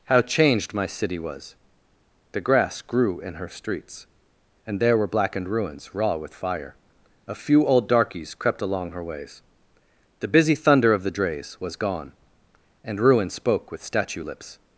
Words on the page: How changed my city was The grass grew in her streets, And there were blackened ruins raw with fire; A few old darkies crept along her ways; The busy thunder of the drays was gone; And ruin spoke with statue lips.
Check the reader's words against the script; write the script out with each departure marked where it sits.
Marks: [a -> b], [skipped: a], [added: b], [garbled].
How changed my city was The grass grew in her streets, And there were blackened ruins raw with fire; A few old darkies crept along her ways; The busy thunder of the drays was gone; And ruin spoke with statue lips.